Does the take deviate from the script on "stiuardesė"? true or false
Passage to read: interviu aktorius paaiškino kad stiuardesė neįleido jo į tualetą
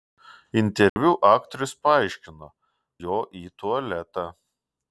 true